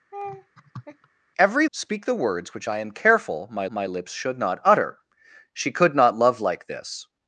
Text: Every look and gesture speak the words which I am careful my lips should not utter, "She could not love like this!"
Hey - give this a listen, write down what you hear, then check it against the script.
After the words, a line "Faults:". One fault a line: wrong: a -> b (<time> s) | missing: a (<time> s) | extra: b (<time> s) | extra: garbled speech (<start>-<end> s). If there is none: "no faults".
Every speak the words which I am careful my my lips should not utter, "She could not love like this!"
Faults:
missing: look and gesture (1.7 s)
extra: my (3.7 s)